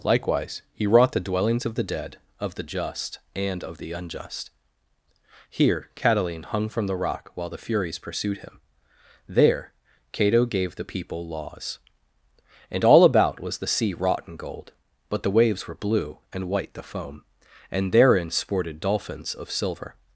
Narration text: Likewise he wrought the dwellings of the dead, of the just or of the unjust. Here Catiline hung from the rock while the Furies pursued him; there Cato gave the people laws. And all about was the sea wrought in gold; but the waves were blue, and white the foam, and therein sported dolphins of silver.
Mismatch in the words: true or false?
true